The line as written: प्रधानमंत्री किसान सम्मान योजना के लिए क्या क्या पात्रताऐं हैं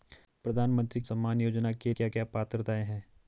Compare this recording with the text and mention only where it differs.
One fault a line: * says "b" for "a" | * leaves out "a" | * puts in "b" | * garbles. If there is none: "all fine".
* leaves out "किसान"
* leaves out "लिए"